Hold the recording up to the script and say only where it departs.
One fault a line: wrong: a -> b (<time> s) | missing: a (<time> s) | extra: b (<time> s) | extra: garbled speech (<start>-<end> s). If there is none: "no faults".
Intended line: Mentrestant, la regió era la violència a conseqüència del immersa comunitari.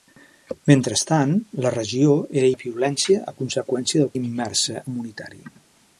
no faults